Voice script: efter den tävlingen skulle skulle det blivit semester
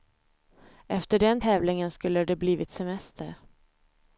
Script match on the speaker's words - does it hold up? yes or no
no